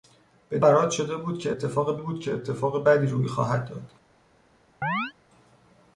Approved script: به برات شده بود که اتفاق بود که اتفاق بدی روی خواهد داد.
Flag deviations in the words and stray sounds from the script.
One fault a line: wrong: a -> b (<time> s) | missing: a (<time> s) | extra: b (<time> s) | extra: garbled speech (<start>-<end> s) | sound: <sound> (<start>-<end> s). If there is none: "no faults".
sound: chirp (4.8-5.1 s)